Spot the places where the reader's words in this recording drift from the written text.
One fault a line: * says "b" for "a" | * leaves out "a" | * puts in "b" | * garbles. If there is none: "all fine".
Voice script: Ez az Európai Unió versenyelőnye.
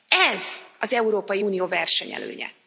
all fine